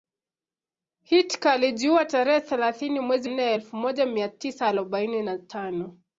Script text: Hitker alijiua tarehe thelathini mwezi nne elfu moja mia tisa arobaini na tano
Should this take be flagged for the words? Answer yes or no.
no